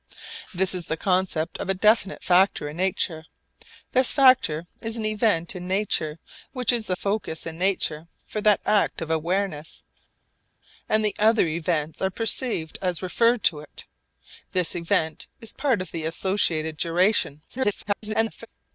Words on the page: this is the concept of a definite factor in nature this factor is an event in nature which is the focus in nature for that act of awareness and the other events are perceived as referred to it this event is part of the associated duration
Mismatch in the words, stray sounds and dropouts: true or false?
true